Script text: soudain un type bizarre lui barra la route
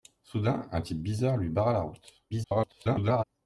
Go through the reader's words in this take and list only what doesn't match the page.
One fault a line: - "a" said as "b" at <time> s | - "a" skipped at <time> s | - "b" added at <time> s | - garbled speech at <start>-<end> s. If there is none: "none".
- garbled speech at 2.3-3.2 s